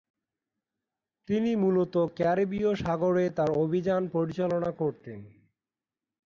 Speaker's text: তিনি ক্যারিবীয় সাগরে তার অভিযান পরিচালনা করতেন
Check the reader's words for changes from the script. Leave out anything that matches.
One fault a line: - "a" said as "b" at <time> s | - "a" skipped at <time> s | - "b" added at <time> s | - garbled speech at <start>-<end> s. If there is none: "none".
- "মূলত" added at 1.6 s